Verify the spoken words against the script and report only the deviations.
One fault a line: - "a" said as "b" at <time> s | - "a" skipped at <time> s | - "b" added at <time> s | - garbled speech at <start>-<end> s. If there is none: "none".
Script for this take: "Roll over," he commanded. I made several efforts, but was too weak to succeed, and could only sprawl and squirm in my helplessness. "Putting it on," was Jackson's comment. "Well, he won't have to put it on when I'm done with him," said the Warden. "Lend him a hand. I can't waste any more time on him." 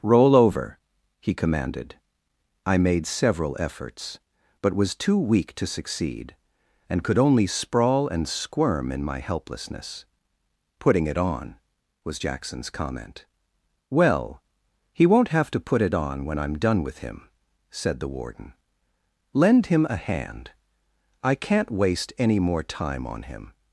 none